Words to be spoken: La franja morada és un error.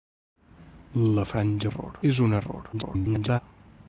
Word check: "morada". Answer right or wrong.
wrong